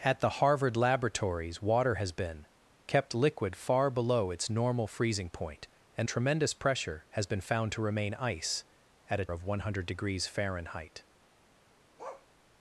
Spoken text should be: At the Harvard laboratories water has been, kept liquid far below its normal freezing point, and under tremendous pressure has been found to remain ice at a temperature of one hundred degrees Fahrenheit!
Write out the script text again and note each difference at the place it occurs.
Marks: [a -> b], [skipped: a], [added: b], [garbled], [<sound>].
At the Harvard laboratories water has been, kept liquid far below its normal freezing point, and [skipped: under] tremendous pressure has been found to remain ice at a [skipped: temperature] of one hundred degrees Fahrenheit! [bark]